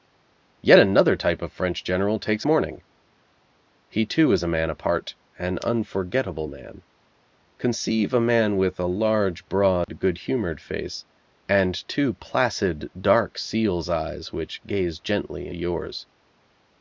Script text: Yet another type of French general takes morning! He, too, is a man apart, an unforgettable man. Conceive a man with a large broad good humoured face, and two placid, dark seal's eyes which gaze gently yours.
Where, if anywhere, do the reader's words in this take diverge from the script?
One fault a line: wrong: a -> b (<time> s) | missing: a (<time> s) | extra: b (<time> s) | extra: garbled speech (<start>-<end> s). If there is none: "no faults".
no faults